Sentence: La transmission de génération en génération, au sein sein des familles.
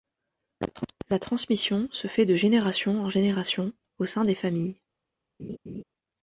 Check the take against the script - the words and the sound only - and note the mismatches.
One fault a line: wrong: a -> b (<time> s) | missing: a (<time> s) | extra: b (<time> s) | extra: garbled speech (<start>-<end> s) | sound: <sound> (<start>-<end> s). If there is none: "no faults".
extra: se fait (1.9 s)
missing: sein (4.2 s)
sound: laugh (5.4-5.8 s)